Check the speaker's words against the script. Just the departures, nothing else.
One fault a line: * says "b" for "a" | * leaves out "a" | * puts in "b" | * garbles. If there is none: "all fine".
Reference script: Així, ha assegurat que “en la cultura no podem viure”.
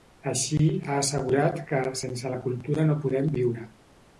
* says "sense" for "en"